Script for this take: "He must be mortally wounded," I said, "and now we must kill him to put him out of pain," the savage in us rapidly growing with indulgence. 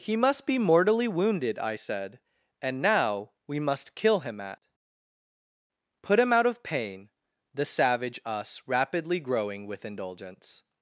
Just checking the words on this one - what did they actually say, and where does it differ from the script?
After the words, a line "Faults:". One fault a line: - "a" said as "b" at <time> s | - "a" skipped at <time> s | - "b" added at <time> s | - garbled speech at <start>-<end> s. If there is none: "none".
"He must be mortally wounded," I said, "and now we must kill him at put him out of pain," the savage us rapidly growing with indulgence.
Faults:
- "to" said as "at" at 4.4 s
- "in" skipped at 8.2 s